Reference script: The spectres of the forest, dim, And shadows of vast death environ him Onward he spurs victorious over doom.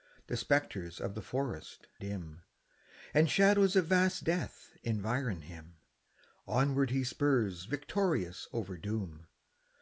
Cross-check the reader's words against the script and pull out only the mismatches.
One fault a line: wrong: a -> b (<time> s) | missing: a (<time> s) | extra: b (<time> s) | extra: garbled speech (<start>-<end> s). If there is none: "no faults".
no faults